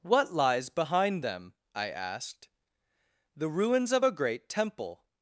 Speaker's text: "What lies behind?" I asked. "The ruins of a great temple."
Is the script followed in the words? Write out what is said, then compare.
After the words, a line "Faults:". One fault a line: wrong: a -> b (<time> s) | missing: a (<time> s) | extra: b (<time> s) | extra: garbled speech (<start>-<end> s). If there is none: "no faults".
"What lies behind them?" I asked. "The ruins of a great temple."
Faults:
extra: them (1.2 s)